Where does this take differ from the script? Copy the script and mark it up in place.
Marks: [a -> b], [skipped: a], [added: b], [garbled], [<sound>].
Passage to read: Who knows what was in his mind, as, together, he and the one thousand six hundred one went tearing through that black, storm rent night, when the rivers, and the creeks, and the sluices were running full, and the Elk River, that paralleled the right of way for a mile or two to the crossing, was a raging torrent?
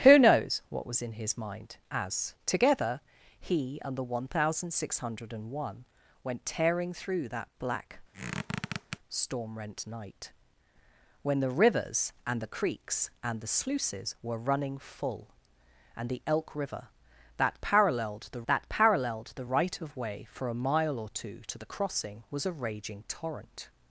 Who knows what was in his mind, as, together, he and the one thousand six hundred one went tearing through that black, [squeak] storm rent night, when the rivers, and the creeks, and the sluices were running full, and the Elk River, that paralleled the [added: that paralleled the] right of way for a mile or two to the crossing, was a raging torrent?